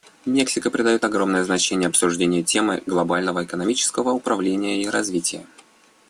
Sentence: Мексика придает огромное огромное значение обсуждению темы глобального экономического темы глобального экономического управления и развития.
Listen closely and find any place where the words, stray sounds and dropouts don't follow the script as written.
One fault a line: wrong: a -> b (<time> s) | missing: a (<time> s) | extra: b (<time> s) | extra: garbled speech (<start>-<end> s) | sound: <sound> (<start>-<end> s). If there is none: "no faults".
missing: огромное (1.4 s)
missing: темы глобального экономического (4.1 s)